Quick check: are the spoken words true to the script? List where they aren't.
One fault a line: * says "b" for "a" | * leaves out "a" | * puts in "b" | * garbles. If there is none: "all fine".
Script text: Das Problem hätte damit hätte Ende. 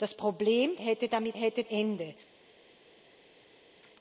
all fine